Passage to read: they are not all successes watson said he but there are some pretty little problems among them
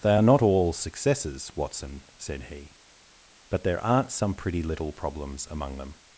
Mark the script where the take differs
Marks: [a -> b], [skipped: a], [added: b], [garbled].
they are not all successes watson said he but there [are -> aren't] some pretty little problems among them